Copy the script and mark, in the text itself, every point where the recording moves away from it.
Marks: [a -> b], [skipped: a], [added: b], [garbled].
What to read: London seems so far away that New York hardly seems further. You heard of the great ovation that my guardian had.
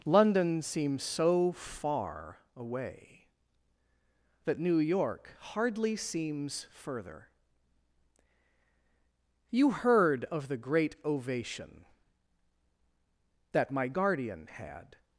London seems so far away that New York hardly seems further. You heard of the great ovation that my guardian had.